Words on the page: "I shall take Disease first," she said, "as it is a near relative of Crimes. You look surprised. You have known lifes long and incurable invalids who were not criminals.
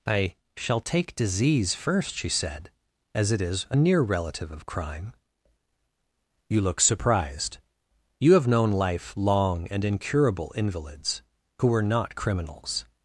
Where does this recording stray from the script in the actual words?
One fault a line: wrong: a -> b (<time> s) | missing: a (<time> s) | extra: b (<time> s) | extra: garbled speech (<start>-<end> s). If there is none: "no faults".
wrong: Crimes -> Crime (4.7 s)
wrong: lifes -> life (8.7 s)